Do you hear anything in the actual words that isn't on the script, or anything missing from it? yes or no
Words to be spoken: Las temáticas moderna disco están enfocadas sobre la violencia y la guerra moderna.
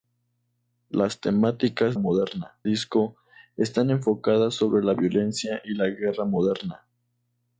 no